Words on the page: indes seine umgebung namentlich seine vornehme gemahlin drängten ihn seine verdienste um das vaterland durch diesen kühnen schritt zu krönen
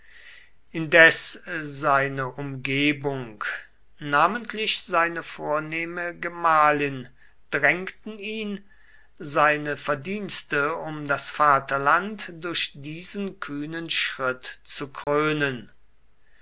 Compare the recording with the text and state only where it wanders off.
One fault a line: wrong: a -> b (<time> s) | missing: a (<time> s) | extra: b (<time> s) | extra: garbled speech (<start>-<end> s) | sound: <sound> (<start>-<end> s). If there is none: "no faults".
sound: dropout (15.0-15.1 s)